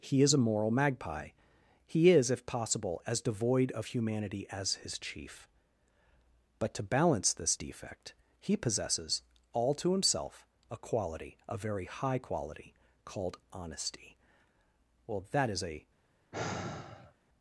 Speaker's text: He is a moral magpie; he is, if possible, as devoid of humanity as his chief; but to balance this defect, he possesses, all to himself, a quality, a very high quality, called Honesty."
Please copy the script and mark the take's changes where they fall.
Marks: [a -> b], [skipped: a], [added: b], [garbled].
He is a moral magpie; he is, if possible, as devoid of humanity as his chief; but to balance this defect, he possesses, all to himself, a quality, a very high quality, called Honesty." [added: Well that is a]